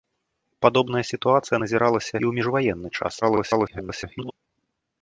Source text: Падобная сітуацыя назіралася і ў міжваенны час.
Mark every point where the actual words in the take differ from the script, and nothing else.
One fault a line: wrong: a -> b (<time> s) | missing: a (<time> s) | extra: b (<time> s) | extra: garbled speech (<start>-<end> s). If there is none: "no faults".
missing: і (2.2 s)
extra: garbled speech (3.2-4.3 s)